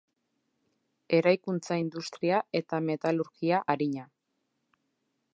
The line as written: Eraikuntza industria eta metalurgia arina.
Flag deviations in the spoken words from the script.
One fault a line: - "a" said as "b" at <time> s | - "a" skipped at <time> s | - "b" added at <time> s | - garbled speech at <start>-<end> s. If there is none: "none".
none